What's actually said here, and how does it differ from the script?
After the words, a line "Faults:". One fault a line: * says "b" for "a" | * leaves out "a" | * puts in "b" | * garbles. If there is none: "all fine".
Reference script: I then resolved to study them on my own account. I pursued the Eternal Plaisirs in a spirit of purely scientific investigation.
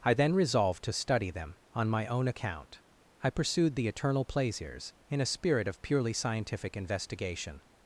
I then resolved to study them on my own account. I pursued the Eternal Plaisirs in a spirit of purely scientific investigation.
Faults:
all fine